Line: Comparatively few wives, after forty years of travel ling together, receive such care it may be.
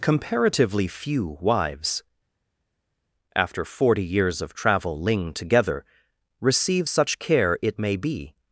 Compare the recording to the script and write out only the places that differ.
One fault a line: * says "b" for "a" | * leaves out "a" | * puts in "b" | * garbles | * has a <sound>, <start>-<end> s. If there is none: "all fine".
all fine